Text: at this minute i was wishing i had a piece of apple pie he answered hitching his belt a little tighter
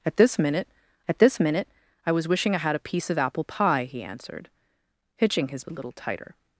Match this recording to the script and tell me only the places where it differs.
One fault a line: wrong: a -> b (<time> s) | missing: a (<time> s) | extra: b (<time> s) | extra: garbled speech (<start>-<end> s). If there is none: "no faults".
extra: at this minute (1.1 s)
missing: belt (5.6 s)